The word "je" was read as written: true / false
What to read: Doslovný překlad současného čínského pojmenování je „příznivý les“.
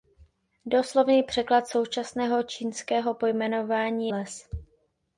false